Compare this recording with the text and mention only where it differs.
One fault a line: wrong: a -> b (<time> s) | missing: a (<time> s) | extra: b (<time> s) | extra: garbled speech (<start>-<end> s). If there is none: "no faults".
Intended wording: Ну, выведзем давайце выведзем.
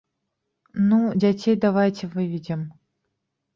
wrong: выведзем -> дзяцей (1.2 s)